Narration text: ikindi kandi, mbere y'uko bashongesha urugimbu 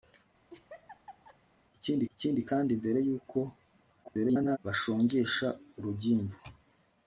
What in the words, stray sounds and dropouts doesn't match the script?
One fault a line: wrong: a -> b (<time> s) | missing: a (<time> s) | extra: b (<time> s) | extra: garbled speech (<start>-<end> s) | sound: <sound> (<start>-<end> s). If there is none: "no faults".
sound: laugh (0.5-1.4 s)
extra: ikindi (2.1 s)
extra: garbled speech (4.0-4.6 s)